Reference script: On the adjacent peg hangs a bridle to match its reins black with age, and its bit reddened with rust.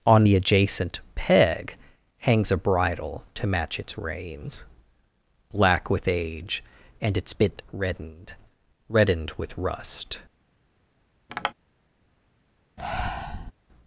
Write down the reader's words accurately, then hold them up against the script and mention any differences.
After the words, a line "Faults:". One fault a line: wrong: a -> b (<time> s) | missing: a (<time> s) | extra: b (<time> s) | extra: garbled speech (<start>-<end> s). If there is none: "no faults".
On the adjacent peg hangs a bridle to match its reins black with age, and its bit reddened reddened with rust.
Faults:
extra: reddened (8.9 s)